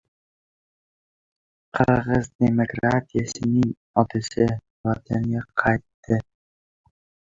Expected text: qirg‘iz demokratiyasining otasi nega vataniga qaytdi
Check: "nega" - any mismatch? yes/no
yes